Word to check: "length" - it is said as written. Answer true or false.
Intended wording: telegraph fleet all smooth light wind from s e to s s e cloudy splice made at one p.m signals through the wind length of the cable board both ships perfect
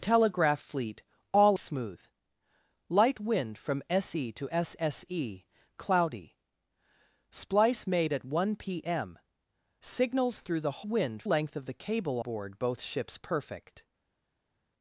true